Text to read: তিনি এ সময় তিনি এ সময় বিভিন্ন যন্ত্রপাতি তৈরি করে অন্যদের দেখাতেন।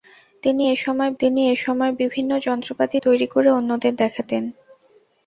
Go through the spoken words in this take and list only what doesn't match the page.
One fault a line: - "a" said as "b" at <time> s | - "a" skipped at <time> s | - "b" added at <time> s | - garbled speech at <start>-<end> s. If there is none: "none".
none